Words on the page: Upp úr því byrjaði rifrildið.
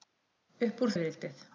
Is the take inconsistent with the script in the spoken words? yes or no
yes